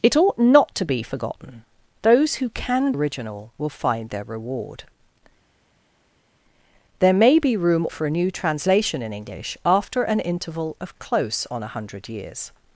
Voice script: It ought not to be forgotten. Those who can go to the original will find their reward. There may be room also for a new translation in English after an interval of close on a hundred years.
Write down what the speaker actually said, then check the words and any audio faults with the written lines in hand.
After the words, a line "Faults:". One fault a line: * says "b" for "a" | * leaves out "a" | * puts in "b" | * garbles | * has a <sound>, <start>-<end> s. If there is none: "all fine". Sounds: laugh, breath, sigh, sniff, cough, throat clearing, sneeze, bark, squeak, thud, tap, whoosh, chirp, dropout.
It ought not to be forgotten. Those who can original will find their reward. There may be room for a new translation in English after an interval of close on a hundred years.
Faults:
* leaves out "go to the"
* leaves out "also"